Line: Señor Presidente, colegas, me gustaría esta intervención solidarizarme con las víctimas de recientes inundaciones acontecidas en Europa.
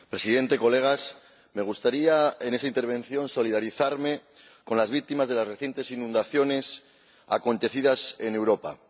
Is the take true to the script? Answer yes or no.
no